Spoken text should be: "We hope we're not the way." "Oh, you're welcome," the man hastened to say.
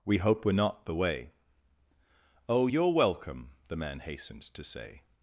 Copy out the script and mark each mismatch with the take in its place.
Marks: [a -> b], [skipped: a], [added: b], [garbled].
"We hope we're not the way." "Oh, you're welcome," the man hastened to say.